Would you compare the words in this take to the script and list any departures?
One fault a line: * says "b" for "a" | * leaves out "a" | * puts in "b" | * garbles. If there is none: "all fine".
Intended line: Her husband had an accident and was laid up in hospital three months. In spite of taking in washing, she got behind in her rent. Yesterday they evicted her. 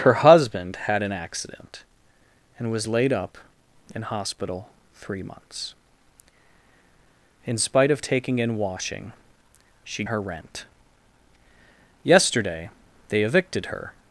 * leaves out "got behind in"